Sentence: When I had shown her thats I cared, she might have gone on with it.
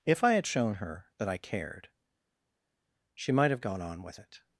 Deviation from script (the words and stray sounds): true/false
true